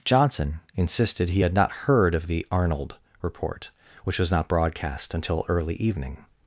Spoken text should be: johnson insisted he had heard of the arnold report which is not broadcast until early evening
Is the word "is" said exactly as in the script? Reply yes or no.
no